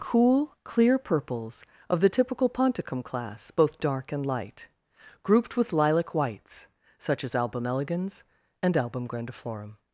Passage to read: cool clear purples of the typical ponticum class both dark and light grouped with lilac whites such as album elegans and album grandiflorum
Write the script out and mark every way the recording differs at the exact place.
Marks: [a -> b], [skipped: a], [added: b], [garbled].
cool clear purples of the typical ponticum class both dark and light grouped with lilac whites such as album elegans and album grandiflorum